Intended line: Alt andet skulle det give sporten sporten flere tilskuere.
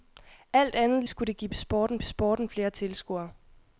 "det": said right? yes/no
yes